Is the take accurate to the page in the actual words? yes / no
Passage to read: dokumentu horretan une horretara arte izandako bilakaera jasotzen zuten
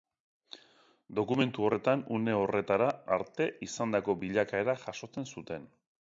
yes